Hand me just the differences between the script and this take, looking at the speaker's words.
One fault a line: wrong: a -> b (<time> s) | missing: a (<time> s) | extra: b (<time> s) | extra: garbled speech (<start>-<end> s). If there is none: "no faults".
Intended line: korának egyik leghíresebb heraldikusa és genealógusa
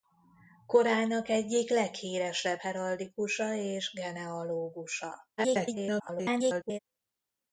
extra: garbled speech (5.4-6.8 s)